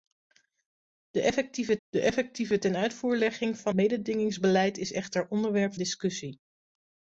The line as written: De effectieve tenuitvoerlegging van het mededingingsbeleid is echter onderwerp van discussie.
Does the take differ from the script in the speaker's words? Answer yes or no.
yes